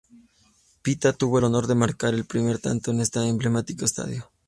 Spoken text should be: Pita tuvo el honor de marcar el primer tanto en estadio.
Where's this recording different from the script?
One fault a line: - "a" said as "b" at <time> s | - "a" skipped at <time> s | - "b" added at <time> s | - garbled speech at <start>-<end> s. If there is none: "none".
- "este emblemático" added at 3.0 s